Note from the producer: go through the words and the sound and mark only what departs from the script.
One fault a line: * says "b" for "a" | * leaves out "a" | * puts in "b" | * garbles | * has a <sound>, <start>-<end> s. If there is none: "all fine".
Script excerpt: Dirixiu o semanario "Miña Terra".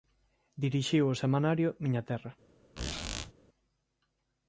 * has a squeak, 2.8-3.3 s